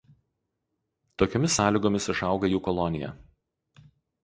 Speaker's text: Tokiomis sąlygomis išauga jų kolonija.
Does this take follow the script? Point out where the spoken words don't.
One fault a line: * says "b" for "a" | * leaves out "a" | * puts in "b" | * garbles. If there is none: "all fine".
all fine